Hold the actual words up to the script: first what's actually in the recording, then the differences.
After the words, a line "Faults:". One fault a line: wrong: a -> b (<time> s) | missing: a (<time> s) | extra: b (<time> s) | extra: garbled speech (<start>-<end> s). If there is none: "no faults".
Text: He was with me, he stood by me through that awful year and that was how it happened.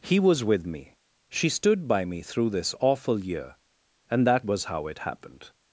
He was with me, she stood by me through this awful year and that was how it happened.
Faults:
wrong: he -> she (1.3 s)
wrong: that -> this (2.5 s)